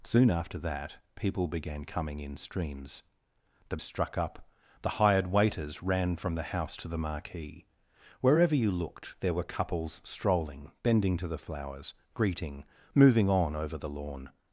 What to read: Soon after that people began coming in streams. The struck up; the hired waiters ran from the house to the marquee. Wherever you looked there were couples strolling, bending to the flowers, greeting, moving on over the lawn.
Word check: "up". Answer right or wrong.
right